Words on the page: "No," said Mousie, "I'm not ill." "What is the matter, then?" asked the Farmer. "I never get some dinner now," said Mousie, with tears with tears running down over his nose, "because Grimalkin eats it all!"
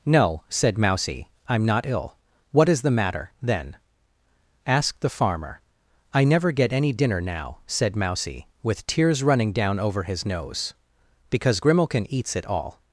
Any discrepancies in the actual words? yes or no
yes